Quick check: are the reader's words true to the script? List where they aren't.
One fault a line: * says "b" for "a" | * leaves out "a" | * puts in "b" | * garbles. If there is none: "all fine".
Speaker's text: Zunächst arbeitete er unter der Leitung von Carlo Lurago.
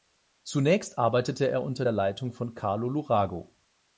all fine